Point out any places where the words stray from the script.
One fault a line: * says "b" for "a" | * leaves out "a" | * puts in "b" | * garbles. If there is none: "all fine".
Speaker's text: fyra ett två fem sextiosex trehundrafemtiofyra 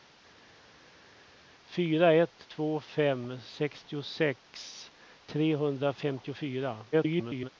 * garbles